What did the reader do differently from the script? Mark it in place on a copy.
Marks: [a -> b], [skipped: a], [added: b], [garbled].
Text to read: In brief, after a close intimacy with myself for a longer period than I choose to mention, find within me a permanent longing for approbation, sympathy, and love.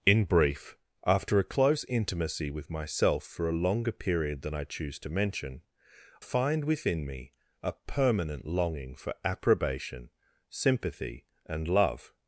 In brief, after a close intimacy with myself for a longer period than I choose to mention, find within me a permanent longing for approbation, sympathy, and love.